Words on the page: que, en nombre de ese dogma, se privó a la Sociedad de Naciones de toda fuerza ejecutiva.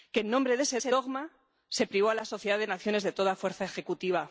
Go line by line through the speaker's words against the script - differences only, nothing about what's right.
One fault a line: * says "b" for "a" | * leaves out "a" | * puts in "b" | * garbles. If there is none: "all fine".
* puts in "ese"